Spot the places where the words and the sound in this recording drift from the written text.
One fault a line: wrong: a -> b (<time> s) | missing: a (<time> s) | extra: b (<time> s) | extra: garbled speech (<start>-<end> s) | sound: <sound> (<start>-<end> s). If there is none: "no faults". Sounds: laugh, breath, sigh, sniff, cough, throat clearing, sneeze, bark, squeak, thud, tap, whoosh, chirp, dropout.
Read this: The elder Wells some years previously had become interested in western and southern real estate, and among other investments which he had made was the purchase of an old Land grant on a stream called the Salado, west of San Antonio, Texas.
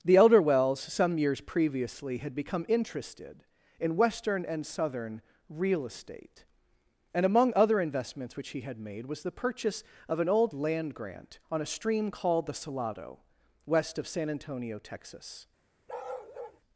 sound: bark (15.9-16.6 s)